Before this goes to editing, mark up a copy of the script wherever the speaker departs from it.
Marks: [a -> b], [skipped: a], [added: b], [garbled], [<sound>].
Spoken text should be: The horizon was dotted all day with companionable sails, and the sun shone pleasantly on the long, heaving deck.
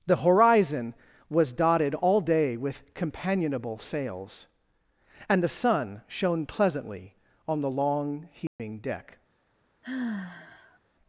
The horizon was dotted all day with companionable sails, and the sun shone pleasantly on the long, heaving [dropout] deck. [sigh]